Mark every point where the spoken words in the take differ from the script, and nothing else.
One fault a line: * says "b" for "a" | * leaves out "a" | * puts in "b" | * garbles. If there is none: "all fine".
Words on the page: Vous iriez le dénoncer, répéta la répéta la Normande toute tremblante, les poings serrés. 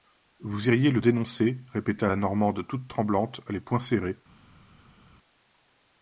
* leaves out "répéta la"